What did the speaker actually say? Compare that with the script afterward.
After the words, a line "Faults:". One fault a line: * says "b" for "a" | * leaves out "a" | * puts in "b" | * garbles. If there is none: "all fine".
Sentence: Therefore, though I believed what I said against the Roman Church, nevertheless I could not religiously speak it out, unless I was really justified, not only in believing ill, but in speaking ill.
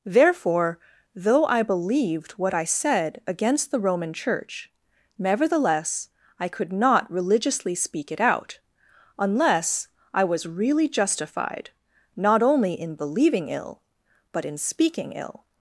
Therefore, though I believed what I said against the Roman Church, nevertheless I could not religiously speak it out, unless I was really justified, not only in believing ill, but in speaking ill.
Faults:
all fine